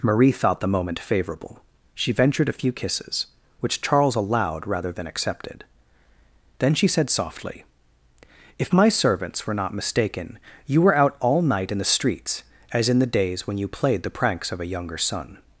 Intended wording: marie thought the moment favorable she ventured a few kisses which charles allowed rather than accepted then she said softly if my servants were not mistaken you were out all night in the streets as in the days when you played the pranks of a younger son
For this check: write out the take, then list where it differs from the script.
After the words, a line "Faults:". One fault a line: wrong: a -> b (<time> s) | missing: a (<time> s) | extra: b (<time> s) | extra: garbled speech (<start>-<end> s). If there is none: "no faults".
marie thought the moment favorable she ventured a few kisses which charles allowed rather than accepted then she said softly if my servants were not mistaken you were out all night in the streets as in the days when you played the pranks of a younger son
Faults:
no faults